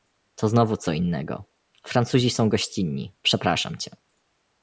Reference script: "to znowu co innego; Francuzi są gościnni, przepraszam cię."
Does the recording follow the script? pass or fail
pass